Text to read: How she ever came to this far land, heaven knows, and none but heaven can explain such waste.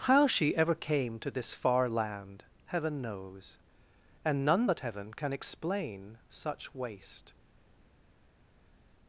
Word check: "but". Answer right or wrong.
right